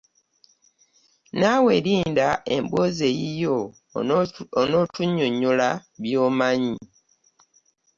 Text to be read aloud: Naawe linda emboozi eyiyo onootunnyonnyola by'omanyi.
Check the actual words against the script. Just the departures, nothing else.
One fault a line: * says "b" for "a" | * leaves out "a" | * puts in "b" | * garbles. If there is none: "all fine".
all fine